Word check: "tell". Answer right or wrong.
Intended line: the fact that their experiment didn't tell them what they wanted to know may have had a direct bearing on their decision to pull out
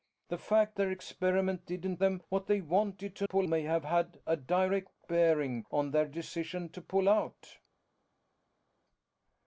wrong